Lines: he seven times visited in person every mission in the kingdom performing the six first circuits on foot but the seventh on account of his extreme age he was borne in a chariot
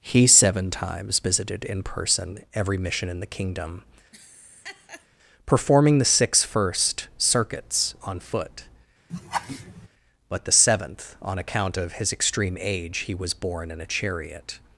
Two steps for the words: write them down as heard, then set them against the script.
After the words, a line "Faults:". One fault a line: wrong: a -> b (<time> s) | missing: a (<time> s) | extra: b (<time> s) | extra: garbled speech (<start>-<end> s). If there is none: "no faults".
he seven times visited in person every mission in the kingdom performing the six first circuits on foot but the seventh on account of his extreme age he was borne in a chariot
Faults:
no faults